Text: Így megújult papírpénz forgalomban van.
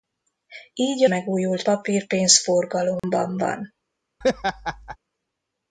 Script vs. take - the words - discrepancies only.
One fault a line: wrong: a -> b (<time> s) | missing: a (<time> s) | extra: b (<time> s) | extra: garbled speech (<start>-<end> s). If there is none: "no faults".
no faults